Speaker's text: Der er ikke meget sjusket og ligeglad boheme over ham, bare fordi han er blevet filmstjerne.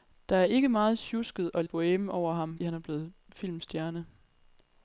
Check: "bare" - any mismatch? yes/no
yes